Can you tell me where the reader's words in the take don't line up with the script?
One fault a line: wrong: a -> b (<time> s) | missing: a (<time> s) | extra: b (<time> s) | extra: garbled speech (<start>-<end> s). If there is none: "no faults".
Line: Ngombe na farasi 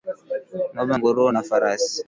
extra: nguruwe (0.9 s)